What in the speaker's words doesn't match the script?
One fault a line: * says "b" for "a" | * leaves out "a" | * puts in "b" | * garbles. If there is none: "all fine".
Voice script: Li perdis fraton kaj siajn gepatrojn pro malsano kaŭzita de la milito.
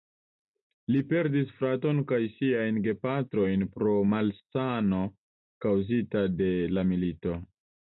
all fine